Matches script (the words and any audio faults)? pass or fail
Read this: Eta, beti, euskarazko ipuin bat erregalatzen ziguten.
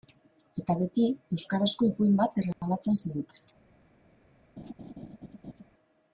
fail